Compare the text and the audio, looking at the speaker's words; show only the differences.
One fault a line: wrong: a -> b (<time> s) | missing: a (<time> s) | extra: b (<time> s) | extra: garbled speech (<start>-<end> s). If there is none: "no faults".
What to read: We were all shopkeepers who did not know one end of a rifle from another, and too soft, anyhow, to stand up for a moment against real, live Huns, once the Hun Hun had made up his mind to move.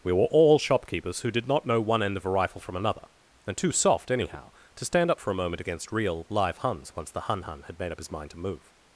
no faults